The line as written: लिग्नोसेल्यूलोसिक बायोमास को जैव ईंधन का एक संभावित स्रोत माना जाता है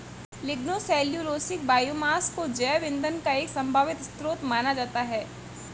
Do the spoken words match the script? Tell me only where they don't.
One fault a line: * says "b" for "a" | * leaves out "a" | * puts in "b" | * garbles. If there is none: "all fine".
all fine